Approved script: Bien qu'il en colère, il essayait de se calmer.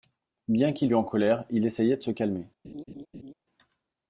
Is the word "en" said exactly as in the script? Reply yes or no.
yes